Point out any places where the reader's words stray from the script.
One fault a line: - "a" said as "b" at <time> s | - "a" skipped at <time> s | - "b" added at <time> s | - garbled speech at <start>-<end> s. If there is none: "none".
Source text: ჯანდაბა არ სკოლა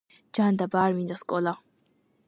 - "მინდა" added at 1.0 s